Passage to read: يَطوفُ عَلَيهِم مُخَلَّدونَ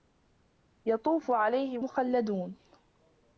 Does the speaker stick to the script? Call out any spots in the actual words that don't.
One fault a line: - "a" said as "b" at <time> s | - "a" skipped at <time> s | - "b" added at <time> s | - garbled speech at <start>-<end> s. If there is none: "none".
none